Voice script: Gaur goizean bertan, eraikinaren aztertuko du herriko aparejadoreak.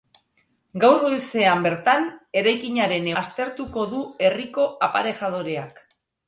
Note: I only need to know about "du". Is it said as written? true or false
true